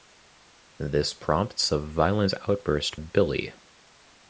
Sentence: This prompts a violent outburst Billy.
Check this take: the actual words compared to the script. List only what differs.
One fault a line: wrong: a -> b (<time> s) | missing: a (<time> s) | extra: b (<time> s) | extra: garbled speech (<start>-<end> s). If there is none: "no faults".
no faults